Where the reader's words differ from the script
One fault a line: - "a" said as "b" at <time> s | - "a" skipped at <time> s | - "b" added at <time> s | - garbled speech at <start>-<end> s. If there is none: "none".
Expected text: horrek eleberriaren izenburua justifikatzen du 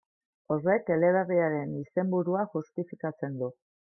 none